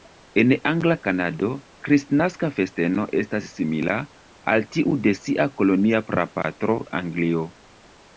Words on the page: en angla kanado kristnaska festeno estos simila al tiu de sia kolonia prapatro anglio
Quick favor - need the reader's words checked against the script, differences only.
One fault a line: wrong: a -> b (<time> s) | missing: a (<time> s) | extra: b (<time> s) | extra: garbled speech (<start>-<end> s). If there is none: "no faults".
wrong: estos -> estas (3.2 s)